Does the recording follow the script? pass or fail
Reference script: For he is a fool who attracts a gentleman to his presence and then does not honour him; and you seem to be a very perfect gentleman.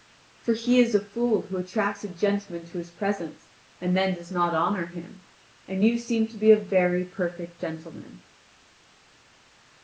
pass